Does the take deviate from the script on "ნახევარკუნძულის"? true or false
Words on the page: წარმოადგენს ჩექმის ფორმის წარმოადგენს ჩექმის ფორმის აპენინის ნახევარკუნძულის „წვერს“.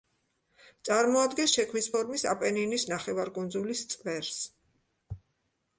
false